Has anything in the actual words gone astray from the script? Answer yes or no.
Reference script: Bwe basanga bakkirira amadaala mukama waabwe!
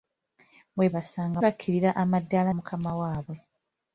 no